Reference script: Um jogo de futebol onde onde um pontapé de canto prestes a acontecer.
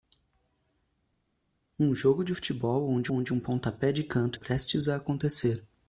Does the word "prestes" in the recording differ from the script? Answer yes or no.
no